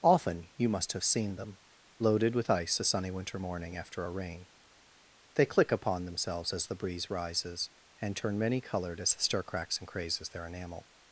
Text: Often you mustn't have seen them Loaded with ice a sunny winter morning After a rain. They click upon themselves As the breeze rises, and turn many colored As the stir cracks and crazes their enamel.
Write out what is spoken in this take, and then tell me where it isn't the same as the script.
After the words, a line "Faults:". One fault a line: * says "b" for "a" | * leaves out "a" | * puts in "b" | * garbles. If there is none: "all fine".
Often you must have seen them Loaded with ice a sunny winter morning After a rain. They click upon themselves As the breeze rises, and turn many colored As the stir cracks and crazes their enamel.
Faults:
* says "must" for "mustn't"